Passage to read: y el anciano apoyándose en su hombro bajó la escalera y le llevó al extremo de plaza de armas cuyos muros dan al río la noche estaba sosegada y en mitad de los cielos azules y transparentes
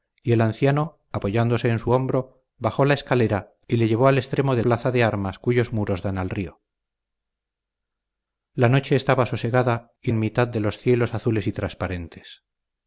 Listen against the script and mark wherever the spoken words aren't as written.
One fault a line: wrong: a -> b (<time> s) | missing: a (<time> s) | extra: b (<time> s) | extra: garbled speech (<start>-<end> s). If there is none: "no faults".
no faults